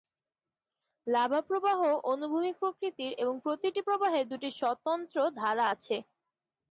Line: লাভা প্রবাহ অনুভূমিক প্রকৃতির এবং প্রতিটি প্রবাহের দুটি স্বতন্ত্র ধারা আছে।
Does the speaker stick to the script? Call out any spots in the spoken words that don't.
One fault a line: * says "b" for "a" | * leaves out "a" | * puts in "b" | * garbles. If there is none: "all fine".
all fine